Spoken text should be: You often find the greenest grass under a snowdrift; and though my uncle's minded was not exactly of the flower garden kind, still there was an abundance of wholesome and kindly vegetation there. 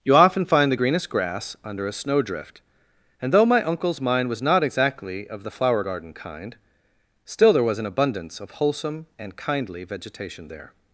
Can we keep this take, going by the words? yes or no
no